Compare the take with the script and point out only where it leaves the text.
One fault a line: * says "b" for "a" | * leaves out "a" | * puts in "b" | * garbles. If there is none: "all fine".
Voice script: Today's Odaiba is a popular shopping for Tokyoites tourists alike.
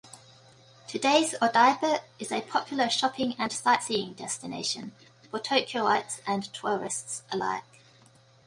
* puts in "and sightseeing destination"
* puts in "and"